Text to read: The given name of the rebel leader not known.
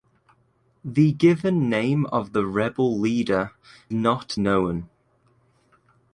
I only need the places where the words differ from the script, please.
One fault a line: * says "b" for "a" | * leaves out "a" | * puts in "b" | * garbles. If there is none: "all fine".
all fine